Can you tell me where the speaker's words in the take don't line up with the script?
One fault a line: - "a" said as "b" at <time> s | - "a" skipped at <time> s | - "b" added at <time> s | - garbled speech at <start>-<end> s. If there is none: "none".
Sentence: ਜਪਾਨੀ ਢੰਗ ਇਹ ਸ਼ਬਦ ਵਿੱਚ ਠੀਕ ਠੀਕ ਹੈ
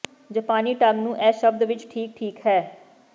- "ਨੂੰ" added at 1.0 s